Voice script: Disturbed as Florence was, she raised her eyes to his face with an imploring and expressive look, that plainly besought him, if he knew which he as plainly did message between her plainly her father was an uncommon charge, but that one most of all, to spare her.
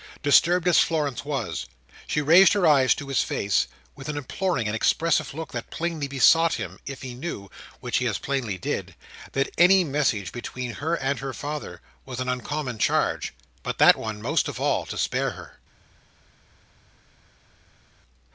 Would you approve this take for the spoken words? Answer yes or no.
no